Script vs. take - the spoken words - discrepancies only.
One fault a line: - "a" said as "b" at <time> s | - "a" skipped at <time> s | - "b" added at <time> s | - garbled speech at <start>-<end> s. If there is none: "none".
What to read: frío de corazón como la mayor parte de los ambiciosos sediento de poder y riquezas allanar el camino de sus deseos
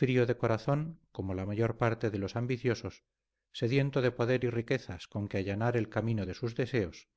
- "con que" added at 5.1 s